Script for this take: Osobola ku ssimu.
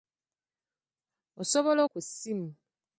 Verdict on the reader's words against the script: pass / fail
pass